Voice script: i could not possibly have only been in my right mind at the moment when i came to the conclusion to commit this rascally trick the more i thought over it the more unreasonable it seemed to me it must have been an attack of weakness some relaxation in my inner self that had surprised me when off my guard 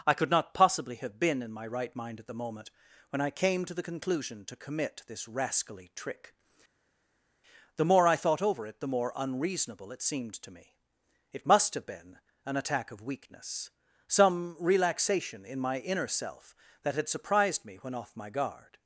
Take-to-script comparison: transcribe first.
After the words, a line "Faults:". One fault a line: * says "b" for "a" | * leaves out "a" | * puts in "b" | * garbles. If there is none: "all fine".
i could not possibly have been in my right mind at the moment when i came to the conclusion to commit this rascally trick the more i thought over it the more unreasonable it seemed to me it must have been an attack of weakness some relaxation in my inner self that had surprised me when off my guard
Faults:
* leaves out "only"